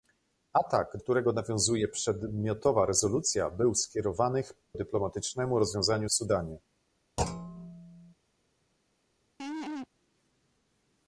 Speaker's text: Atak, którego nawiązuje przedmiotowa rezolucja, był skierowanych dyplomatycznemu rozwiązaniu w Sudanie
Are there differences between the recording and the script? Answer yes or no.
no